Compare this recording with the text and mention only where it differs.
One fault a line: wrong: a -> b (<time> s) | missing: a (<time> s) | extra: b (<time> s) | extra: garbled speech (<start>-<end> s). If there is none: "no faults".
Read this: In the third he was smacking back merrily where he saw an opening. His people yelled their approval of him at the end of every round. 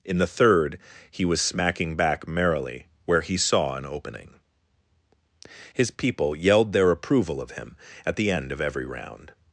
no faults